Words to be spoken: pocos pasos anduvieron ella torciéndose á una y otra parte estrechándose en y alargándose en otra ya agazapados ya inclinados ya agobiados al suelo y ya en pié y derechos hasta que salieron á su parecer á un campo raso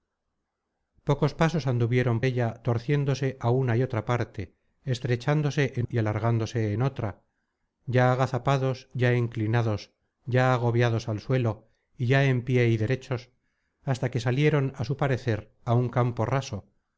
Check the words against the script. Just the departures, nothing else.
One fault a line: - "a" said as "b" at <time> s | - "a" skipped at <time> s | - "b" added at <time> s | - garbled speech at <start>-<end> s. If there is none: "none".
none